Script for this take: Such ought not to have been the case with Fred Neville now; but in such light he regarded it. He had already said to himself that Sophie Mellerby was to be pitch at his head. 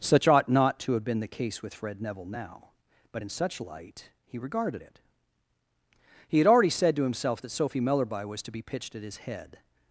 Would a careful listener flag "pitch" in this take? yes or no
yes